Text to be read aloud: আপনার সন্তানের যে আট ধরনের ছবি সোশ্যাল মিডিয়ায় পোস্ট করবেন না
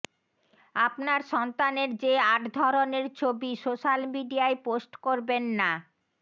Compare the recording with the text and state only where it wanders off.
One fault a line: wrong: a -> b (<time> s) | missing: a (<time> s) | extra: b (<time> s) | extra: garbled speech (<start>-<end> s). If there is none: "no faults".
no faults